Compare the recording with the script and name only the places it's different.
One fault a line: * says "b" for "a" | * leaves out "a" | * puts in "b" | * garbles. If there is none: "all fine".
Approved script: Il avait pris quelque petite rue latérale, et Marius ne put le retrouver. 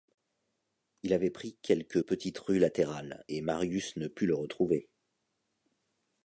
all fine